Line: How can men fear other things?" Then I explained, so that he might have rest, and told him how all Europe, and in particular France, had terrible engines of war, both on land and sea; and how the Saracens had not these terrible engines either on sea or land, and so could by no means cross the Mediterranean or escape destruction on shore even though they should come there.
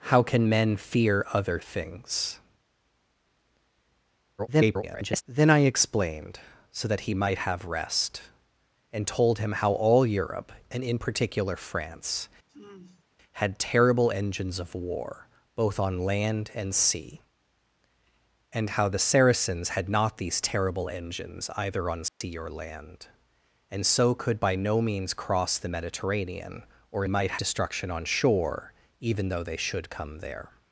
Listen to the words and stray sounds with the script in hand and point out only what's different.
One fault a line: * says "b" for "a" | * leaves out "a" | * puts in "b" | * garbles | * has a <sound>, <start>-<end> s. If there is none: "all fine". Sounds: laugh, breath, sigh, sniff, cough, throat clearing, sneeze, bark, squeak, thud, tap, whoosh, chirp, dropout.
* garbles
* has a sigh, 12.5-13.1 s
* has a dropout, 22.1-22.2 s
* says "might" for "escape"